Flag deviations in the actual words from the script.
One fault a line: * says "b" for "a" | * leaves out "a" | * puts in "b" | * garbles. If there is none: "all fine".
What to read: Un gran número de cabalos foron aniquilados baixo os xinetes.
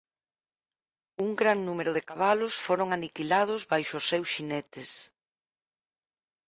* puts in "seus"